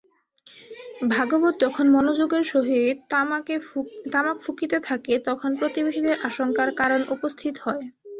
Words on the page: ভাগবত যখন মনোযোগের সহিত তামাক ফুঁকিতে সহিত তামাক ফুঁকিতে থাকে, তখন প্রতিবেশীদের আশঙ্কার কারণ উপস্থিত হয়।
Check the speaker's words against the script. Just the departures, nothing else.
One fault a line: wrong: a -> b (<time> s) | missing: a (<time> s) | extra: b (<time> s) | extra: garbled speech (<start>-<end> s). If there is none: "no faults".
missing: সহিত তামাক ফুঁকিতে (4.8 s)